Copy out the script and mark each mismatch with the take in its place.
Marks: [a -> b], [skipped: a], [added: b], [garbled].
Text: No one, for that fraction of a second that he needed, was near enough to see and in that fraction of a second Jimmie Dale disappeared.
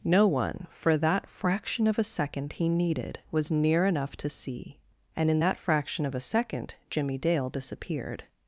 No one, for that fraction of a second [skipped: that] he needed, was near enough to see and in that fraction of a second Jimmie Dale disappeared.